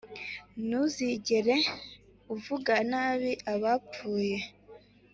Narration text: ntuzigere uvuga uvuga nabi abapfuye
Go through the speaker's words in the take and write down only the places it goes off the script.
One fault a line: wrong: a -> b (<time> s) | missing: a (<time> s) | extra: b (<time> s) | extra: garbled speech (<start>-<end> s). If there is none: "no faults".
missing: uvuga (2.7 s)